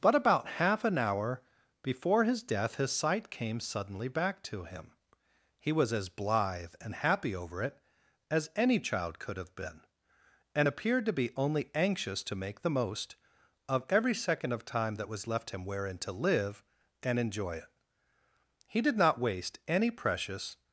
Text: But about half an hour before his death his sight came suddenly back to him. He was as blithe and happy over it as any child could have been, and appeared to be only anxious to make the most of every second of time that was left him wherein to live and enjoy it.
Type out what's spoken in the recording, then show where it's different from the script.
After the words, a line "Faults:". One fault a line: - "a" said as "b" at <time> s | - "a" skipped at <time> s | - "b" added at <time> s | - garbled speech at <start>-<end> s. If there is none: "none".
But about half an hour before his death his sight came suddenly back to him. He was as blithe and happy over it as any child could have been, and appeared to be only anxious to make the most of every second of time that was left him wherein to live and enjoy it. He did not waste any precious
Faults:
- "He did not waste any precious" added at 18.7 s